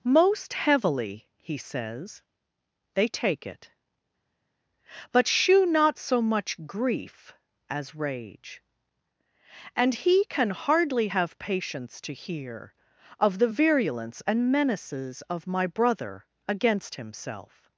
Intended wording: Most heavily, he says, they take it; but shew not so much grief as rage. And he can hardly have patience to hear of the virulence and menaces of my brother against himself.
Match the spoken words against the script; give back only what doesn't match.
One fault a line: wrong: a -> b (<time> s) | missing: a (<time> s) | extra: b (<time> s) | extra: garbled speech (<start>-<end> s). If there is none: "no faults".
no faults